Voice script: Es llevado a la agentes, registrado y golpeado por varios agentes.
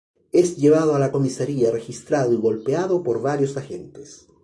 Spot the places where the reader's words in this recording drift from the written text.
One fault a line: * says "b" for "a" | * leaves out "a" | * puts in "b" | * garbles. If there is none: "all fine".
* says "comisaría" for "agentes"